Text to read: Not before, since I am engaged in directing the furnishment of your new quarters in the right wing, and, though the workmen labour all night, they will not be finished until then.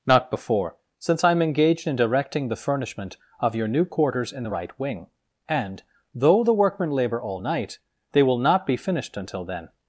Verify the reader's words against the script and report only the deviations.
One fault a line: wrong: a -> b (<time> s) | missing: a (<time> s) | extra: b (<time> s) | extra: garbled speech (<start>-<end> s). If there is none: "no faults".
no faults